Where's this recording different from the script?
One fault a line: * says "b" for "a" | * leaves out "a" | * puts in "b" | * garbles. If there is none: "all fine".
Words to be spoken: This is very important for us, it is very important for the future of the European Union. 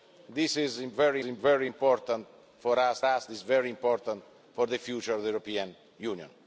* puts in "very"
* puts in "us"